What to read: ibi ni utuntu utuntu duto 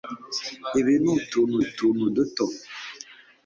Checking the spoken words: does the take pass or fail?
pass